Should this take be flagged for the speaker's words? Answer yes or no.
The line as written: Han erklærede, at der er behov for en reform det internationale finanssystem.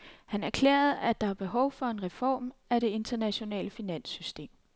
yes